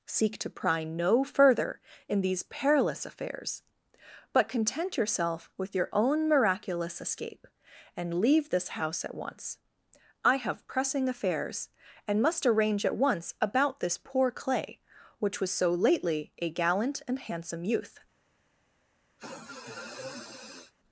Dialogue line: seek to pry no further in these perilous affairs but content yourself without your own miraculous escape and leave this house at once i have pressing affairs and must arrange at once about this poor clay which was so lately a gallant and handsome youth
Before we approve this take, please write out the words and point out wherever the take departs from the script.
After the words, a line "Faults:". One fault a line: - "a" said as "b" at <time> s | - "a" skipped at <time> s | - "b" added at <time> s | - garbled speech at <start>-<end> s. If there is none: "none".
seek to pry no further in these perilous affairs but content yourself with your own miraculous escape and leave this house at once i have pressing affairs and must arrange at once about this poor clay which was so lately a gallant and handsome youth
Faults:
- "without" said as "with" at 5.6 s